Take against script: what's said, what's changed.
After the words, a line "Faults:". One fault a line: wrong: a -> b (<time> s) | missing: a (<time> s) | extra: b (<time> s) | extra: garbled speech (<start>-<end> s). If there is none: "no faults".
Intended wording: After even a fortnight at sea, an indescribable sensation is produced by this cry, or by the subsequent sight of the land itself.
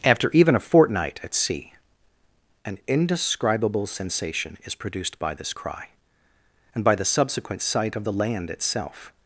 After even a fortnight at sea, an indescribable sensation is produced by this cry, and by the subsequent sight of the land itself.
Faults:
wrong: or -> and (6.7 s)